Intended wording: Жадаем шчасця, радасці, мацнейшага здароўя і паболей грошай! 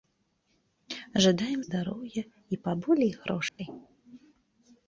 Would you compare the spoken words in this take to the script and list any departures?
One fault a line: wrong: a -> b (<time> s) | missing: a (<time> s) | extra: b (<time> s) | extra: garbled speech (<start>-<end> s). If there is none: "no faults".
missing: шчасця радасці мацнейшага (1.6 s)